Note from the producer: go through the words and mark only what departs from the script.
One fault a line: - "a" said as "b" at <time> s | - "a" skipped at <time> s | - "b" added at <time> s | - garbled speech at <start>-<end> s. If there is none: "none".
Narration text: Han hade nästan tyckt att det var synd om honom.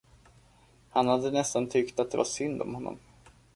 none